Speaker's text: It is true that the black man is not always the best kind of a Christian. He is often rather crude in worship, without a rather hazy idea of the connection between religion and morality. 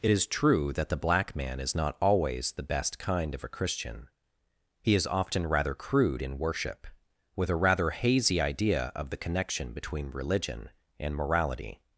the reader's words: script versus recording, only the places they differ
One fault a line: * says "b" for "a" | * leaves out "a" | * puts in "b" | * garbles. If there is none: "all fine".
* says "with" for "without"